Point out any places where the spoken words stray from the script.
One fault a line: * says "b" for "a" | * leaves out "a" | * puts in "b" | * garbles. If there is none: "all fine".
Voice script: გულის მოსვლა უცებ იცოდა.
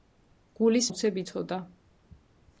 * leaves out "მოსვლა"